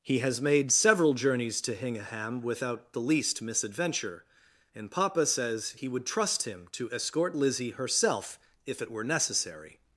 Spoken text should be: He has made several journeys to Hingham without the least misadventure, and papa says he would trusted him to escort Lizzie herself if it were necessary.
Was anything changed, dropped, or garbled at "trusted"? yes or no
yes